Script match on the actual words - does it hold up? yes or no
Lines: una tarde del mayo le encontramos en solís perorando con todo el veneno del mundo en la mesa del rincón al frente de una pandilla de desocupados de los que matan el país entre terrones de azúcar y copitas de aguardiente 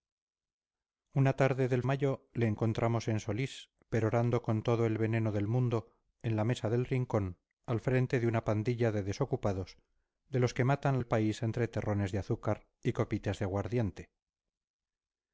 yes